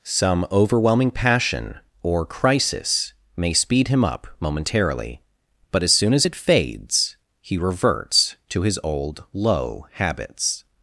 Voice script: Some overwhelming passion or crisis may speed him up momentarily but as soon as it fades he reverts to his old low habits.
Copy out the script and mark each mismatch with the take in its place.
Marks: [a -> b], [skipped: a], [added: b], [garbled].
Some overwhelming passion or crisis may speed him up momentarily but as soon as it fades he reverts to his old low habits.